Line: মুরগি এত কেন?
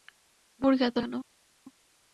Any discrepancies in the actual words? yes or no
no